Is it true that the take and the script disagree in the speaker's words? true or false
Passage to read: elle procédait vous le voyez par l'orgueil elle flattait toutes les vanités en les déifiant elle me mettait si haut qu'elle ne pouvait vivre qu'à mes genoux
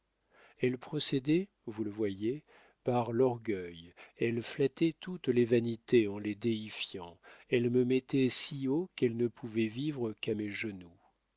false